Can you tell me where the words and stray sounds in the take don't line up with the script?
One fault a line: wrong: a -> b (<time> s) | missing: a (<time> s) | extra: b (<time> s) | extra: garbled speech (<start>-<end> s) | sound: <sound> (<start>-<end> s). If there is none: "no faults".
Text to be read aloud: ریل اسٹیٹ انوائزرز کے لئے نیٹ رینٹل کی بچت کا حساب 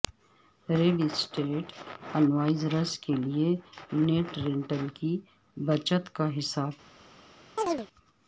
sound: chirp (7.6-7.9 s)